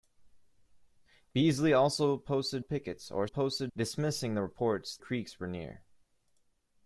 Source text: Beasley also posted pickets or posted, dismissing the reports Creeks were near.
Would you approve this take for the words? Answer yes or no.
yes